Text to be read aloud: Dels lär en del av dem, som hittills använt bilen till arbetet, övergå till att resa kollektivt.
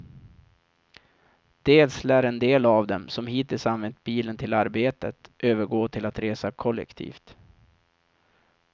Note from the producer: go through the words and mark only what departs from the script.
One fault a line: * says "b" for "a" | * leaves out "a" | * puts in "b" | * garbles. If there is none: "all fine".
all fine